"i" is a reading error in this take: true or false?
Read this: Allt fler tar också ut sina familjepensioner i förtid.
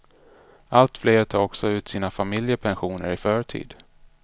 false